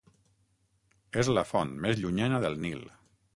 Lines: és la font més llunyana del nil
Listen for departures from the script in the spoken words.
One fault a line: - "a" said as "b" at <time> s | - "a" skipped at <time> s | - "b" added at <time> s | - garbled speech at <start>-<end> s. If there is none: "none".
none